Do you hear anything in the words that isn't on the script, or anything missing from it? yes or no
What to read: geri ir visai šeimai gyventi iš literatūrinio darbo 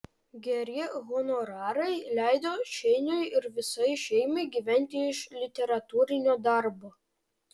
yes